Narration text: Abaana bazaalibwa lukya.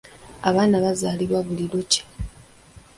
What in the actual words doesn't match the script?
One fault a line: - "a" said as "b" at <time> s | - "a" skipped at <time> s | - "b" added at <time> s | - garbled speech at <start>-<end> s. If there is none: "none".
- "buli" added at 1.5 s